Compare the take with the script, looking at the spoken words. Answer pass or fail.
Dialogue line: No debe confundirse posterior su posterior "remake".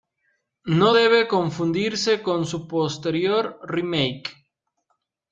fail